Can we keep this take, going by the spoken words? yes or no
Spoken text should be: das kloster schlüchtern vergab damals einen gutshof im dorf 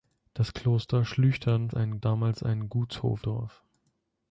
no